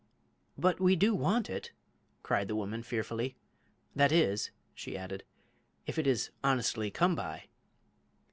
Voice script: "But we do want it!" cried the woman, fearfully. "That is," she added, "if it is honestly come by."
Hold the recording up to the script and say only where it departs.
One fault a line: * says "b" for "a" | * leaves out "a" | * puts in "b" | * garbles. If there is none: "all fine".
all fine